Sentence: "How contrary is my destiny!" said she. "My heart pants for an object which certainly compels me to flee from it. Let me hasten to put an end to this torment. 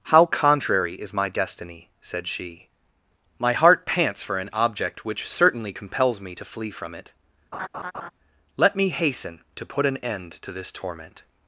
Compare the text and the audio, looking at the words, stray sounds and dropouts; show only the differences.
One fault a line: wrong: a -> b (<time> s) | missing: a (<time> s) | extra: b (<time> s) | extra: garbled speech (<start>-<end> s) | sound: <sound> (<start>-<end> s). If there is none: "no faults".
sound: laugh (7.5-8.1 s)